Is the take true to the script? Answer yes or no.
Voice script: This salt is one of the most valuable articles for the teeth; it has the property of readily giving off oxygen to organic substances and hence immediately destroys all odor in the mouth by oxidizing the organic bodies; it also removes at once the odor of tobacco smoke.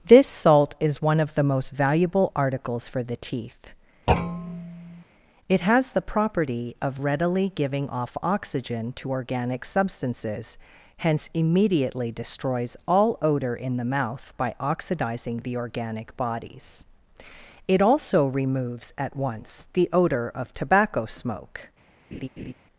no